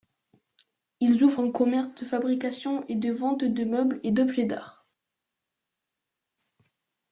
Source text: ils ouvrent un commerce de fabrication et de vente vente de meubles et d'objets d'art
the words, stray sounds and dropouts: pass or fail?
fail